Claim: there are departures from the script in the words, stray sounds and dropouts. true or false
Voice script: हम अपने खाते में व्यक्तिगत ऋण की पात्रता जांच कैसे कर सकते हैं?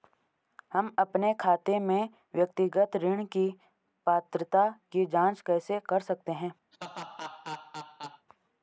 true